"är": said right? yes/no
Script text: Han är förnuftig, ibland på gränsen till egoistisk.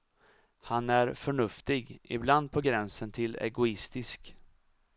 yes